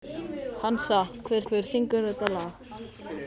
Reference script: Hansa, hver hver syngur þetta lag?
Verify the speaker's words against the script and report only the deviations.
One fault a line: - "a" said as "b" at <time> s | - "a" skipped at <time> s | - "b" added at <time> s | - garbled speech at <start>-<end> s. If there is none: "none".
none